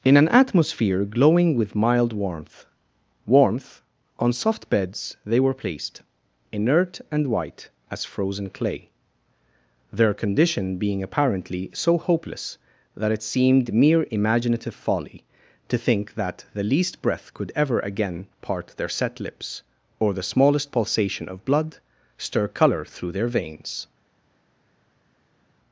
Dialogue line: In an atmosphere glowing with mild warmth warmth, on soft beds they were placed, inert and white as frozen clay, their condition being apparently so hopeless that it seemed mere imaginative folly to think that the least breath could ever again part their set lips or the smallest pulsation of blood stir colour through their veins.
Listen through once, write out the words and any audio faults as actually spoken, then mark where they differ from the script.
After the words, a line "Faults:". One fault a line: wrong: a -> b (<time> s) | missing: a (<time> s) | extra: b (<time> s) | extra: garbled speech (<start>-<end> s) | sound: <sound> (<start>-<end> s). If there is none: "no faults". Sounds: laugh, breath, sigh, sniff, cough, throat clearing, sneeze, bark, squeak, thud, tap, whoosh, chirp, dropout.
In an atmosphere glowing with mild warmth warmth, on soft beds they were placed, inert and white as frozen clay, their condition being apparently so hopeless that it seemed mere imaginative folly to think that the least breath could ever again part their set lips or the smallest pulsation of blood stir colour through their veins.
Faults:
no faults